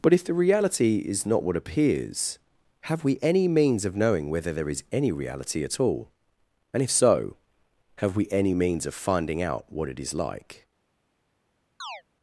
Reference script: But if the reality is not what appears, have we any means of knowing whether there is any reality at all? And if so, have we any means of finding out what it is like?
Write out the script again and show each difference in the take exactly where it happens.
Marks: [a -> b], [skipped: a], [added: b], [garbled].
But if the reality is not what appears, have we any means of knowing whether there is any reality at all? And if so, have we any means of finding out what it is like?